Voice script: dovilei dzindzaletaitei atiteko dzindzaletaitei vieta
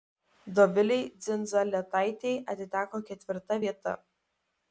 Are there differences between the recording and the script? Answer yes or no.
yes